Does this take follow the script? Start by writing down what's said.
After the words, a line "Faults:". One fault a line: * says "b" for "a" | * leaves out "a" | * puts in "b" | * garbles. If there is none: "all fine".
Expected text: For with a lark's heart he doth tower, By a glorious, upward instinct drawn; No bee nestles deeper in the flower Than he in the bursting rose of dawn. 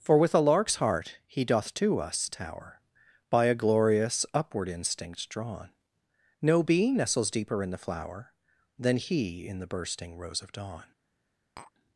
For with a lark's heart he doth to us tower, By a glorious, upward instinct drawn; No bee nestles deeper in the flower Than he in the bursting rose of dawn.
Faults:
* puts in "to us"